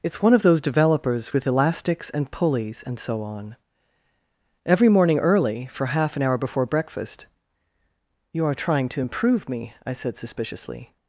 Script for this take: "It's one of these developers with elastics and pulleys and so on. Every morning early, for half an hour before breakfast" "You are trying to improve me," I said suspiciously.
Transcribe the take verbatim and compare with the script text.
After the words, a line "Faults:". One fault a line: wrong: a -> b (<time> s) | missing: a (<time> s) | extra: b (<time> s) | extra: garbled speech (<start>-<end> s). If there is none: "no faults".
"It's one of those developers with elastics and pulleys and so on. Every morning early, for half an hour before breakfast" "You are trying to improve me," I said suspiciously.
Faults:
wrong: these -> those (0.4 s)